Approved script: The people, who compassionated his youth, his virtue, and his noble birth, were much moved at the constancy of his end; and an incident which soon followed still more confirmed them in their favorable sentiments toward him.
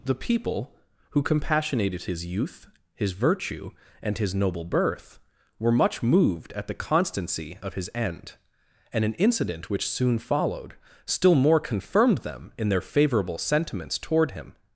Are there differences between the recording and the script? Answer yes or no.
no